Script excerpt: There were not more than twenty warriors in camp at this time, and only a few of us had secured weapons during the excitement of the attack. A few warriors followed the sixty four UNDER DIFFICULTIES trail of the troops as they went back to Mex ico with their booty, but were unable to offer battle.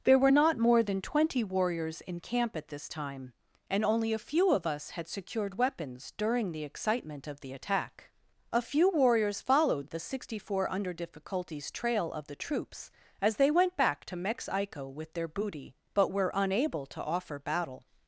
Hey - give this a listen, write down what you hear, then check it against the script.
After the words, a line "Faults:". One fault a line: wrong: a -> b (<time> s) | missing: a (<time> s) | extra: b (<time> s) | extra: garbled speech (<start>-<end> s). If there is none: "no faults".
There were not more than twenty warriors in camp at this time, and only a few of us had secured weapons during the excitement of the attack. A few warriors followed the sixty four UNDER DIFFICULTIES trail of the troops as they went back to Mex ico with their booty, but were unable to offer battle.
Faults:
no faults